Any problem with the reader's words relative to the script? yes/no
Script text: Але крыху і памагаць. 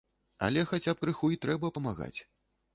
yes